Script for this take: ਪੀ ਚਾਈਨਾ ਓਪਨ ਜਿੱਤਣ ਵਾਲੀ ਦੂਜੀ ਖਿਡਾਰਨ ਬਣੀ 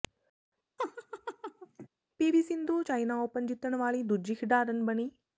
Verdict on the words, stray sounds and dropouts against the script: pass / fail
fail